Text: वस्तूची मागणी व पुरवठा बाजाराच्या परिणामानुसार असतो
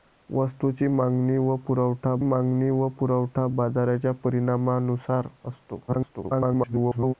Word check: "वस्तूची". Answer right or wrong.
right